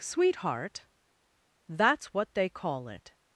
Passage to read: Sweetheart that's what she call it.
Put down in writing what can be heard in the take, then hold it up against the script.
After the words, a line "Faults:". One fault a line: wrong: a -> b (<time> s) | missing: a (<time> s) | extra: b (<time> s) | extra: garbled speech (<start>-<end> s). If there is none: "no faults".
Sweetheart that's what they call it.
Faults:
wrong: she -> they (2.3 s)